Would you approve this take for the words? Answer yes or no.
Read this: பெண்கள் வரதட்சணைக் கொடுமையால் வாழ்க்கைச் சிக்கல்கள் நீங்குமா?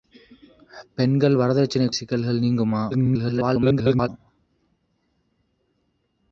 no